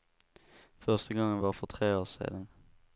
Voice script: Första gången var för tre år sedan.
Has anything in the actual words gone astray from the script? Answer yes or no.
no